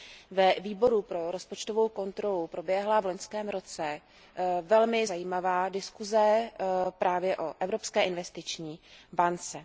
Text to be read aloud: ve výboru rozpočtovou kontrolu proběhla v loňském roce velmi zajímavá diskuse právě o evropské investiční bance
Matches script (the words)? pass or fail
fail